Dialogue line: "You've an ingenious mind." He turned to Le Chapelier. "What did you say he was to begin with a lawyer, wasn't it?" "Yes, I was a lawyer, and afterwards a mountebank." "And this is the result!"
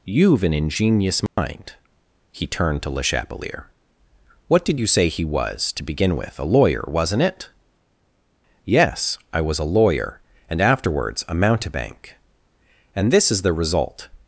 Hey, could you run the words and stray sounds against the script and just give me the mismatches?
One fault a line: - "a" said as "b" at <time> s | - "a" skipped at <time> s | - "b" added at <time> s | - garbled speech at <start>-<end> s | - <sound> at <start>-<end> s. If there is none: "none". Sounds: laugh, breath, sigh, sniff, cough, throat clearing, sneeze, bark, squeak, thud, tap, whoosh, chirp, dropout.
- dropout at 1.3-1.4 s